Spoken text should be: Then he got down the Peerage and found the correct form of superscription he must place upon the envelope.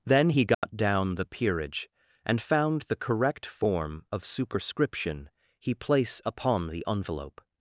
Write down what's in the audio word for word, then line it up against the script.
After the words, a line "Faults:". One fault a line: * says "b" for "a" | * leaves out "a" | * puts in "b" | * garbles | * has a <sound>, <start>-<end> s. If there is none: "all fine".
Then he got down the Peerage and found the correct form of superscription he place upon the envelope.
Faults:
* has a dropout, 0.5-0.6 s
* leaves out "must"